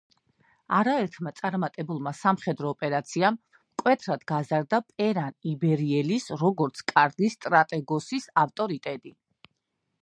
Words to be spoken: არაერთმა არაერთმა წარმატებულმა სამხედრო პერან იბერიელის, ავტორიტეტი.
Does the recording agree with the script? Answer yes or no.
no